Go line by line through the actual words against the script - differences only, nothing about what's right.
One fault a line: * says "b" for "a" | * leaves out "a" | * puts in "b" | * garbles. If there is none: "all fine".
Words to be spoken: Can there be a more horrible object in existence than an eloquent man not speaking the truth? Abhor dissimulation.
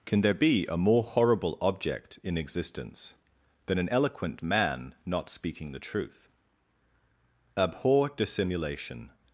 all fine